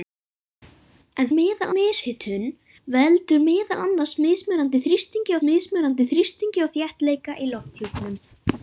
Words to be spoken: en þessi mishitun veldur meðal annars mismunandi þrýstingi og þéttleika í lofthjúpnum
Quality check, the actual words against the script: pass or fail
fail